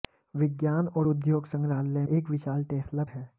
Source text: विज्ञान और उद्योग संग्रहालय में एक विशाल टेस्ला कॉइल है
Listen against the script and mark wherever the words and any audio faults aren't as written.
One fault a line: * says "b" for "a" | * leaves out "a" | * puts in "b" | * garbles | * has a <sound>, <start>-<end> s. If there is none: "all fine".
* leaves out "में"
* leaves out "कॉइल"